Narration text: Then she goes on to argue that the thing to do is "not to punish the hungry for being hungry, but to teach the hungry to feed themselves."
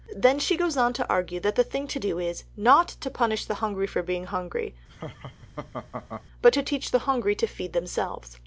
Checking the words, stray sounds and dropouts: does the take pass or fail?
fail